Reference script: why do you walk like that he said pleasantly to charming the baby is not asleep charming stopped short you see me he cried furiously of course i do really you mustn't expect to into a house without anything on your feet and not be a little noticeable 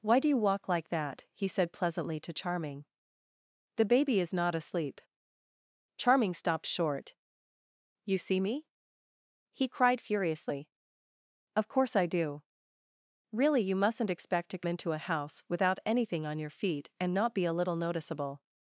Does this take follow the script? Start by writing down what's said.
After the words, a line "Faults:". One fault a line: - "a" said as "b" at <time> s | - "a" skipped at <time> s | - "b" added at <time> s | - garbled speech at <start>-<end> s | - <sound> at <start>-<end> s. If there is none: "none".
why do you walk like that he said pleasantly to charming the baby is not asleep charming stopped short you see me he cried furiously of course i do really you mustn't expect to into a house without anything on your feet and not be a little noticeable
Faults:
none